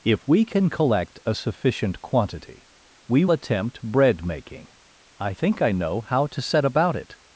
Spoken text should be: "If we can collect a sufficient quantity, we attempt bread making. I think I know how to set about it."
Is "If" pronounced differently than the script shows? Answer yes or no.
no